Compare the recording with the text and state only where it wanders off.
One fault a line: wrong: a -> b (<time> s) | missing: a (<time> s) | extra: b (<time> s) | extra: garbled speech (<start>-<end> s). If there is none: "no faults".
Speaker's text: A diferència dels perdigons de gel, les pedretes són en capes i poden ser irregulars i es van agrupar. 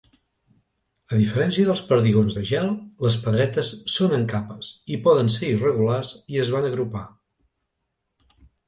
no faults